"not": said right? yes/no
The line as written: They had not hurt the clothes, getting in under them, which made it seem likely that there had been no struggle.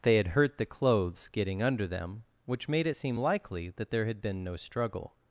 no